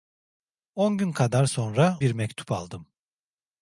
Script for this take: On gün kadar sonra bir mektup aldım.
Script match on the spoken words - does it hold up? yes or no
yes